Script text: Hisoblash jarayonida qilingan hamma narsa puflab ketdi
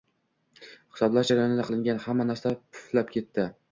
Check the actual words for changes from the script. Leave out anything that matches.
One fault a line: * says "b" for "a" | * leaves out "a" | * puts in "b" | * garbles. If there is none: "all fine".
all fine